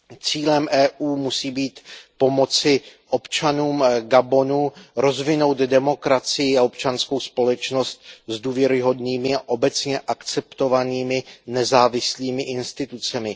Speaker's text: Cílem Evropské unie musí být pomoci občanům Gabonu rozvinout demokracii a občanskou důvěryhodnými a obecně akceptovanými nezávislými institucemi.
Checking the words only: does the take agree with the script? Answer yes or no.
no